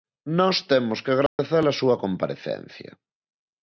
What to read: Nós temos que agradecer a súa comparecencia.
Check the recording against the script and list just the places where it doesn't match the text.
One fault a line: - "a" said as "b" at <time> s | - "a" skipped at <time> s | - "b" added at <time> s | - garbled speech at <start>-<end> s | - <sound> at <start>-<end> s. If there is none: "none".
- dropout at 1.3-1.4 s